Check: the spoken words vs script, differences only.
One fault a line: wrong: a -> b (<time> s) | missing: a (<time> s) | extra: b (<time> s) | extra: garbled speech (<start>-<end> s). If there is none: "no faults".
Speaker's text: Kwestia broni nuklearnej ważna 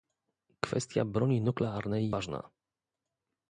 no faults